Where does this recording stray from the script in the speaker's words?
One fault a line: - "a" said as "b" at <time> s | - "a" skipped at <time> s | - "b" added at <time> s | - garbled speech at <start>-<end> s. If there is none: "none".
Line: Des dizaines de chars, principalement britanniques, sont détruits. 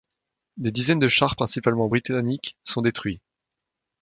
none